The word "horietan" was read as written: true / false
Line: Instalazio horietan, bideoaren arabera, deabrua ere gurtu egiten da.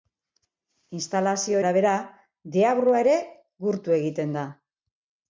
false